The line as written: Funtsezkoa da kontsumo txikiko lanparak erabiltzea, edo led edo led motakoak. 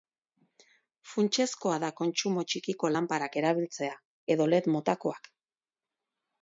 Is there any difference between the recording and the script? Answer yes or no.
yes